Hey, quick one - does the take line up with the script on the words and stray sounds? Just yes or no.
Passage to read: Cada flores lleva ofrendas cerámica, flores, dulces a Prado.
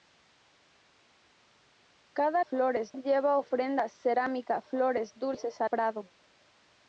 yes